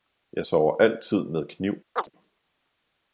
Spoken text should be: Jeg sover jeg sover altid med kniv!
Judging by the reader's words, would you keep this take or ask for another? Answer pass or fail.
fail